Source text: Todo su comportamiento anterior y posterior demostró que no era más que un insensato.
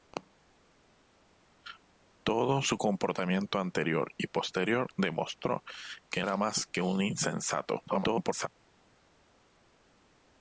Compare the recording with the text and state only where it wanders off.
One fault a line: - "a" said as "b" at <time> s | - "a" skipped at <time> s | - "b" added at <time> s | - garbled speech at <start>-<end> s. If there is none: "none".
- "no" skipped at 6.2 s
- garbled speech at 7.9-8.5 s